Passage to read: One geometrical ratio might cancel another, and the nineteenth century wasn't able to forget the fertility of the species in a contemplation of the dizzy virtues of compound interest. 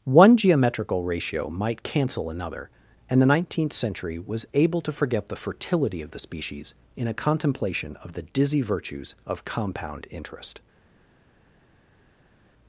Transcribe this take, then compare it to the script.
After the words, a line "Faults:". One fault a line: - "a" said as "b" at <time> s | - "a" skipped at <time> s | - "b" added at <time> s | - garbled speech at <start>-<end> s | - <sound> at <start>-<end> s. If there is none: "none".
One geometrical ratio might cancel another, and the nineteenth century was able to forget the fertility of the species in a contemplation of the dizzy virtues of compound interest.
Faults:
- "wasn't" said as "was" at 4.2 s